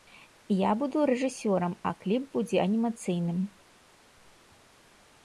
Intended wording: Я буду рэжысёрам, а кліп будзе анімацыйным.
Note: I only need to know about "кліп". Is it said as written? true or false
true